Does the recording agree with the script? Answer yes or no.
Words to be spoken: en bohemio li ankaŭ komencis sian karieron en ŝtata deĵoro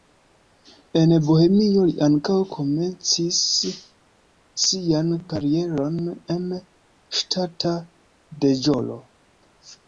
yes